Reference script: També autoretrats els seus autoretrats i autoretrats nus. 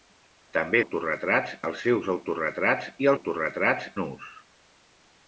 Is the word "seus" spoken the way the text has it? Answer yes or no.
yes